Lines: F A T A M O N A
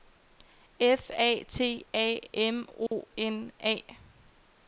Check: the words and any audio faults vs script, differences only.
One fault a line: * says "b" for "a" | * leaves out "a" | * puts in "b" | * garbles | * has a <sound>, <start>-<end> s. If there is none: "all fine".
* has a dropout, 2.9-2.9 s